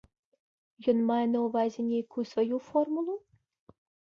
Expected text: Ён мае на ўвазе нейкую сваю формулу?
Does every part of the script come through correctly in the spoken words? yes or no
yes